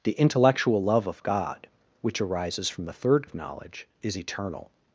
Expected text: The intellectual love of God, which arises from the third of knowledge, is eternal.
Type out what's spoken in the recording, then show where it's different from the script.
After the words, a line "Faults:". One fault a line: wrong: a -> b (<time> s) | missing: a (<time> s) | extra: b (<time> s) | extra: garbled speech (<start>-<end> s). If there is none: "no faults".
The intellectual love of God, which arises from the third of knowledge, is eternal.
Faults:
no faults